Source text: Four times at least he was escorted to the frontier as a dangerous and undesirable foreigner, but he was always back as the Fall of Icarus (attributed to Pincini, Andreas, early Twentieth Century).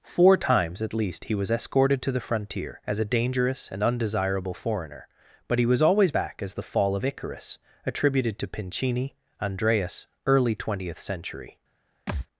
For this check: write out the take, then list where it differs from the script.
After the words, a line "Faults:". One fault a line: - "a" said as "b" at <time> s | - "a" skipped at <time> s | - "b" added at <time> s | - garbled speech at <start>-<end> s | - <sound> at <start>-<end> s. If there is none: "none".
Four times at least he was escorted to the frontier as a dangerous and undesirable foreigner, but he was always back as the Fall of Icarus (attributed to Pincini, Andreas, early Twentieth Century).
Faults:
- thud at 12.1-12.3 s